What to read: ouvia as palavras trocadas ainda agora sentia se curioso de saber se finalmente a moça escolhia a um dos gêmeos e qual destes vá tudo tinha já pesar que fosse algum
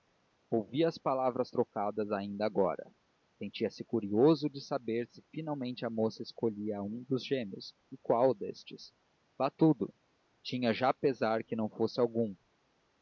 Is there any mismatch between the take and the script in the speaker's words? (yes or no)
yes